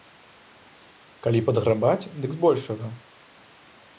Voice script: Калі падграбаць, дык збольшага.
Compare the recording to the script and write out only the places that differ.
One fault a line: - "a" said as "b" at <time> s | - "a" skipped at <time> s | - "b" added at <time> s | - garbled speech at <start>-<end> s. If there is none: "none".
none